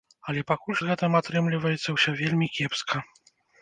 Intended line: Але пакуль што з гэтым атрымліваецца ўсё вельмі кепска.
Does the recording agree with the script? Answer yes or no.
no